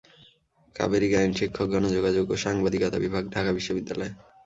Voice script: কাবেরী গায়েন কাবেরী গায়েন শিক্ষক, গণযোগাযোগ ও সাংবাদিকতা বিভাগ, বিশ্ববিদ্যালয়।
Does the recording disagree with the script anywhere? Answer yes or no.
yes